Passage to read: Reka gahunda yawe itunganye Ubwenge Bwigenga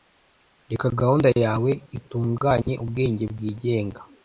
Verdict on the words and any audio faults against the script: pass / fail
fail